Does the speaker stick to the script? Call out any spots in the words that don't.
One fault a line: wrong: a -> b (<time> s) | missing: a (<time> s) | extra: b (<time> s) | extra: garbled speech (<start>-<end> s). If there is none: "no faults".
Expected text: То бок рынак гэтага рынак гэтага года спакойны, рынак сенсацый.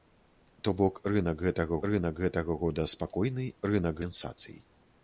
no faults